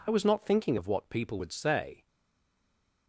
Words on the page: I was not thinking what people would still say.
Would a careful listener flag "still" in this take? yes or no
yes